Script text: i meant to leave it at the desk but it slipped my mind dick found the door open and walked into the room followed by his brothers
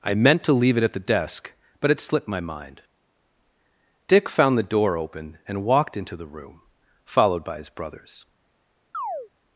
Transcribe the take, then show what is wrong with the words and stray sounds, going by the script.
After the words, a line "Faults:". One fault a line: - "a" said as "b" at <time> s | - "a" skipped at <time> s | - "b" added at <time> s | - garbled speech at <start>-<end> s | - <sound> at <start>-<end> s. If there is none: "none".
i meant to leave it at the desk but it slipped my mind dick found the door open and walked into the room followed by his brothers
Faults:
- chirp at 8.9-9.3 s